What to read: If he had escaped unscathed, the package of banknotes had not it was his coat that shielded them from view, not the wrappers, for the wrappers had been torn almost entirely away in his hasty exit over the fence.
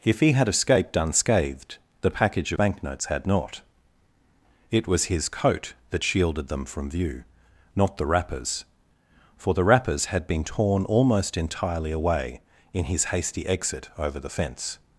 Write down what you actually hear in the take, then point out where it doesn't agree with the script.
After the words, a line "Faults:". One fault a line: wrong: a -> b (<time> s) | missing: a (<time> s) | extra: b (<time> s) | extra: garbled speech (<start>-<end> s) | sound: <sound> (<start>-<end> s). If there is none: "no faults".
If he had escaped unscathed, the package banknotes had not it was his coat that shielded them from view, not the wrappers, for the wrappers had been torn almost entirely away in his hasty exit over the fence.
Faults:
missing: of (2.5 s)